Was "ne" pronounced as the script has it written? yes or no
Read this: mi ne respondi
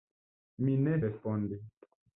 yes